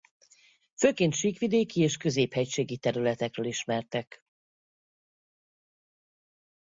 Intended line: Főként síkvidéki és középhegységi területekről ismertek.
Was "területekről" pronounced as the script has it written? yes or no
yes